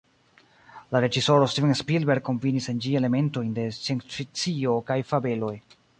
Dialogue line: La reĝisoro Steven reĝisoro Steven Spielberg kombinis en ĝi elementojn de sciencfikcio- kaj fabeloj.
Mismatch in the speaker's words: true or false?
true